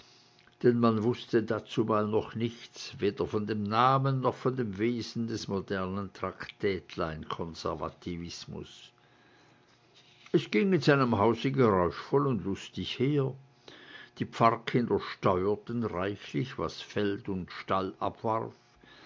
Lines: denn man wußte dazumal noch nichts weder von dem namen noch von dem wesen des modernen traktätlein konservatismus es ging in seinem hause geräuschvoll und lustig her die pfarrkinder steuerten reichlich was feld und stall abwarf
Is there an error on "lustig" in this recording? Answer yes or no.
no